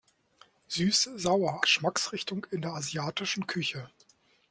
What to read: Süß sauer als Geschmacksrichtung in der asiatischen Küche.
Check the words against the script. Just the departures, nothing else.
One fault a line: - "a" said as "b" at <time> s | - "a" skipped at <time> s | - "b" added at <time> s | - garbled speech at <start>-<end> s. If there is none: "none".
- "als" skipped at 1.6 s